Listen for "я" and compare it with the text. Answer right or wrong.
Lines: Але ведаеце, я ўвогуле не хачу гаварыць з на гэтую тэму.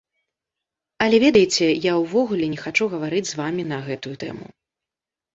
right